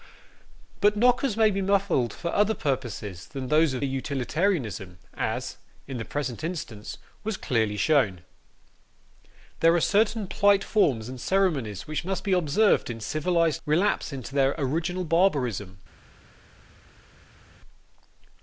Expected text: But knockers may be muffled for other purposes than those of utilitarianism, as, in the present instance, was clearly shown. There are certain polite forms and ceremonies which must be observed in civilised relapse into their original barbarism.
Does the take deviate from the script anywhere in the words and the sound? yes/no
no